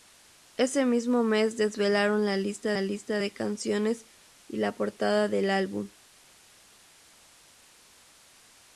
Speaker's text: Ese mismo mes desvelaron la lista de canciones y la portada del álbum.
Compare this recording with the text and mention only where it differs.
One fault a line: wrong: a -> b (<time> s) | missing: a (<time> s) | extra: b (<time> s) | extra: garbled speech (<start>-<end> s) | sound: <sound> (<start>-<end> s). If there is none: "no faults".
extra: la lista (2.7 s)